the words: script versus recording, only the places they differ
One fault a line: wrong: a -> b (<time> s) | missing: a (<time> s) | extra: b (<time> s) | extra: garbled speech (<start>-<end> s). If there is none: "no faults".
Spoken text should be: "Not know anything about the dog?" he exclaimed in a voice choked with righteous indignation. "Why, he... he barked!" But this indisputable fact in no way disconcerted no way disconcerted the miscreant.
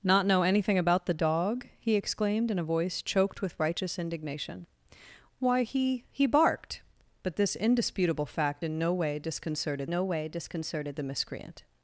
no faults